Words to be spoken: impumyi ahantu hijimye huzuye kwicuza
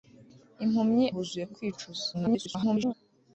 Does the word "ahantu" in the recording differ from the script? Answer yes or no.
yes